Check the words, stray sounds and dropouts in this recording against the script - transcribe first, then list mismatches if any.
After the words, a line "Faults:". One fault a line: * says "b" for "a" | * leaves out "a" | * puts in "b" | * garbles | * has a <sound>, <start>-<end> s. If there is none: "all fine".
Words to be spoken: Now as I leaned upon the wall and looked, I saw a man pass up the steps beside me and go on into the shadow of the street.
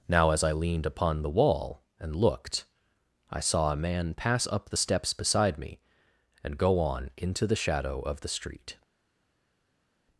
Now as I leaned upon the wall and looked, I saw a man pass up the steps beside me and go on into the shadow of the street.
Faults:
all fine